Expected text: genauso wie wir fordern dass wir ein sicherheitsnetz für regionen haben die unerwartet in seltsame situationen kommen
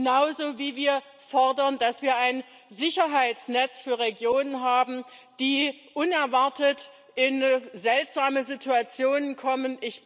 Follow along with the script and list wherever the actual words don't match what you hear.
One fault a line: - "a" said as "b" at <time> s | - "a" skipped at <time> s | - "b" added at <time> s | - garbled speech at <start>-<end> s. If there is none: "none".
none